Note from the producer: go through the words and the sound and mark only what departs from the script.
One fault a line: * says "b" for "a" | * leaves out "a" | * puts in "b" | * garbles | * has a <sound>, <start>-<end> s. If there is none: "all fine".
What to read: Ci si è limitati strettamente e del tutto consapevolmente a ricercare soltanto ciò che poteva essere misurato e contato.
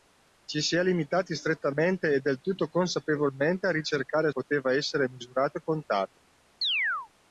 * leaves out "soltanto ciò che"
* has a chirp, 6.6-7.1 s